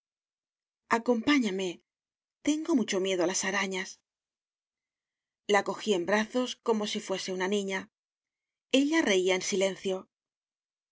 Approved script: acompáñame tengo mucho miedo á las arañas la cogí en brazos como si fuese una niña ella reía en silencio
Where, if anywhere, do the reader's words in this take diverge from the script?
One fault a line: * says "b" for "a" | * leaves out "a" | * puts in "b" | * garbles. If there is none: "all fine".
all fine